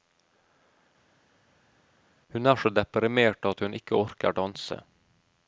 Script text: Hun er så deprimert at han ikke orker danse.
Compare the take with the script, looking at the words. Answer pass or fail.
fail